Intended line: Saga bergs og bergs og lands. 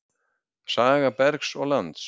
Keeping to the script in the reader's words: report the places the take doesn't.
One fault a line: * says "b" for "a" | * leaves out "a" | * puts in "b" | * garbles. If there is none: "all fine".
* leaves out "bergs og"